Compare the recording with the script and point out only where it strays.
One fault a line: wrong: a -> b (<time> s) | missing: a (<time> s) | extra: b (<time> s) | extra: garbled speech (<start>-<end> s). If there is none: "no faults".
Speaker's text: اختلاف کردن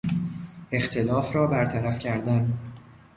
extra: را برطرف (1.4 s)